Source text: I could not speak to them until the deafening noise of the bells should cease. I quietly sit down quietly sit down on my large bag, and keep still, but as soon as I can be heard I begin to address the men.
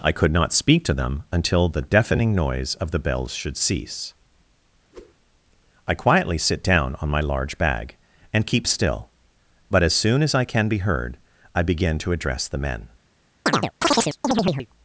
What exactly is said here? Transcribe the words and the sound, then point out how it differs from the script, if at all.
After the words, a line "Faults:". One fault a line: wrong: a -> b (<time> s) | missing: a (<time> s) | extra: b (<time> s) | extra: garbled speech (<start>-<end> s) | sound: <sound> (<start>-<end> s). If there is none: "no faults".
I could not speak to them until the deafening noise of the bells should cease. I quietly sit down on my large bag, and keep still, but as soon as I can be heard I begin to address the men.
Faults:
sound: whoosh (4.9-5.2 s)
missing: quietly sit down (7.0 s)
sound: chirp (13.5-14.7 s)